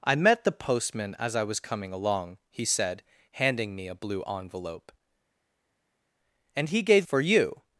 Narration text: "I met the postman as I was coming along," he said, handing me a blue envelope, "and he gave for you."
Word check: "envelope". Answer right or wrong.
right